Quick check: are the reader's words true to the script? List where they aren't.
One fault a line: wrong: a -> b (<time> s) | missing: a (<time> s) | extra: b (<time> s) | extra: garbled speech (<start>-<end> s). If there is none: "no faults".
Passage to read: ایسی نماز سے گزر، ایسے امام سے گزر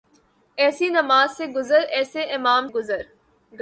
missing: سے (2.7 s)